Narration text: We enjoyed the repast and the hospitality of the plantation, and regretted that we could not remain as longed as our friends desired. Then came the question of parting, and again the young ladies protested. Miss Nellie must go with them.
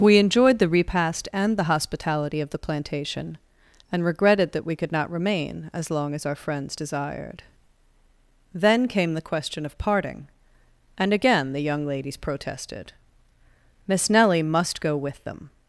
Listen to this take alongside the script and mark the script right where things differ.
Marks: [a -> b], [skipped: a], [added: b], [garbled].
We enjoyed the repast and the hospitality of the plantation, and regretted that we could not remain as [longed -> long] as our friends desired. Then came the question of parting, and again the young ladies protested. Miss Nellie must go with them.